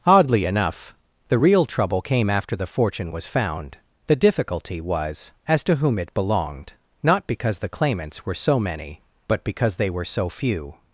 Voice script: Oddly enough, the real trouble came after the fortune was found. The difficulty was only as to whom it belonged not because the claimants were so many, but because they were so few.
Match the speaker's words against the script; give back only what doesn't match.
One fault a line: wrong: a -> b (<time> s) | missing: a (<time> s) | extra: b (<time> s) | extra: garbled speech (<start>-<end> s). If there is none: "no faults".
missing: only (5.3 s)